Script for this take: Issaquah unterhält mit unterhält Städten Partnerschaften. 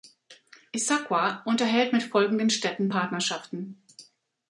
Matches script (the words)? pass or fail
fail